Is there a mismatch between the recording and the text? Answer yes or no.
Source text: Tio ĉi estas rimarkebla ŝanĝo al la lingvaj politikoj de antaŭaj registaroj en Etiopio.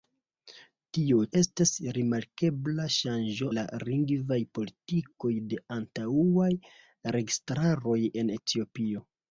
yes